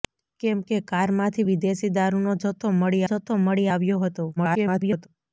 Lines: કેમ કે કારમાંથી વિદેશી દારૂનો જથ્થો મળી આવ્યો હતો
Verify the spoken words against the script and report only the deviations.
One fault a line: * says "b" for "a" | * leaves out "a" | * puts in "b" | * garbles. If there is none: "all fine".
* puts in "જથ્થો મળી"
* garbles